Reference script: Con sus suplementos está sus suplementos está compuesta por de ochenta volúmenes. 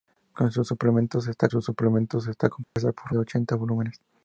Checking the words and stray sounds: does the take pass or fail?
fail